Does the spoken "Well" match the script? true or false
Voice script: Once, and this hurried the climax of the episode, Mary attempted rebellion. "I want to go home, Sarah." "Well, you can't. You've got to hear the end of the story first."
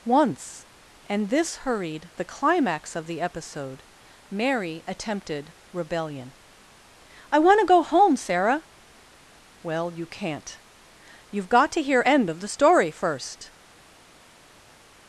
true